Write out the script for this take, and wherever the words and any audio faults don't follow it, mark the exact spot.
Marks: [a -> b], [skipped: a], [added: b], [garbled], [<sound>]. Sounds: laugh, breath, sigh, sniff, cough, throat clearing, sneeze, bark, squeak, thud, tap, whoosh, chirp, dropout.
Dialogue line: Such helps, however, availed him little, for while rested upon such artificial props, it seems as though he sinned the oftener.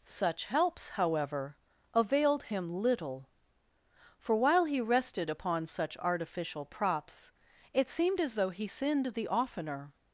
Such helps, however, availed him little, for while [added: he] rested upon such artificial props, it [seems -> seemed] as though he sinned the oftener.